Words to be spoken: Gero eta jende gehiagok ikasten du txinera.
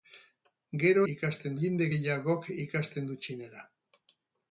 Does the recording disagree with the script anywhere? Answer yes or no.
yes